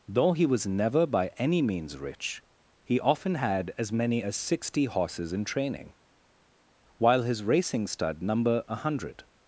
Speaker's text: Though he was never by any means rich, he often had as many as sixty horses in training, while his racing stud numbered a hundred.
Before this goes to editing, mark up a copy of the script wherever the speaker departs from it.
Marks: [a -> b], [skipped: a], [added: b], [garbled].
Though he was never by any means rich, he often had as many as sixty horses in training, while his racing stud [numbered -> number] a hundred.